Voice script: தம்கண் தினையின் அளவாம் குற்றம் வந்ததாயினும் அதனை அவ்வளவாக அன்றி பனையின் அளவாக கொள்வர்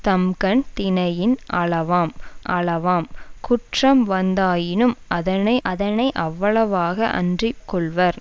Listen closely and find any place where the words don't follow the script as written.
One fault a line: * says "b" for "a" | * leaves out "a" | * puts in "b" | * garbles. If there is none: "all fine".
* puts in "அளவாம்"
* puts in "அதனை"
* leaves out "பனையின் அளவாக"